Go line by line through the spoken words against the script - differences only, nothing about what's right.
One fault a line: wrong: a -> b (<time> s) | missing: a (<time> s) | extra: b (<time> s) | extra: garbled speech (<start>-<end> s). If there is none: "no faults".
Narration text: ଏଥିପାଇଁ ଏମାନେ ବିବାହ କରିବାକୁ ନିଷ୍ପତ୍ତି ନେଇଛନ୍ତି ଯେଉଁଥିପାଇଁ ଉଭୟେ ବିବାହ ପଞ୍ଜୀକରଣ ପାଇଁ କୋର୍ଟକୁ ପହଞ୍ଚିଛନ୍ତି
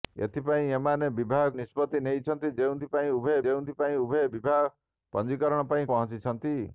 missing: କରିବାକୁ (1.5 s)
extra: ଯେଉଁଥିପାଇଁ ଉଭୟେ (3.4 s)
missing: କୋର୍ଟକୁ (5.9 s)